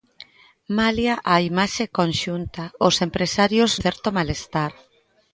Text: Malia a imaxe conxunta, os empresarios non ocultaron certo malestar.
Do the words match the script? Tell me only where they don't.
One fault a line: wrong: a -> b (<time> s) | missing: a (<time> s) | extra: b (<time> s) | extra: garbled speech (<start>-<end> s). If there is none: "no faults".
missing: non ocultaron (3.7 s)